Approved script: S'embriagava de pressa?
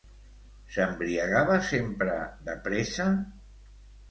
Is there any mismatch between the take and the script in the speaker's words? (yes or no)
yes